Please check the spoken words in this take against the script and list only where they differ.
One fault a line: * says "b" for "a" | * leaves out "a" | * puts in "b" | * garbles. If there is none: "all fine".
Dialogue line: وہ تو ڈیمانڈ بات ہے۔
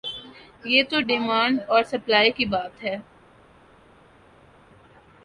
* says "یہ" for "وہ"
* puts in "اور سپلائی کی"